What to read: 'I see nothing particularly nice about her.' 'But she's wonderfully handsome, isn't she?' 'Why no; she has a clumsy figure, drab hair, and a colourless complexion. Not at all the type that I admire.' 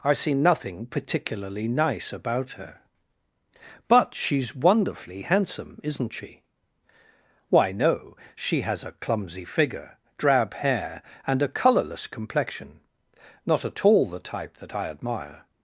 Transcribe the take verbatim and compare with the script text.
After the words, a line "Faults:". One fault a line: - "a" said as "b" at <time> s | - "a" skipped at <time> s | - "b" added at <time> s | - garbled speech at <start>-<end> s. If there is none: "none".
'I see nothing particularly nice about her.' 'But she's wonderfully handsome, isn't she?' 'Why no; she has a clumsy figure, drab hair, and a colourless complexion. Not at all the type that I admire.'
Faults:
none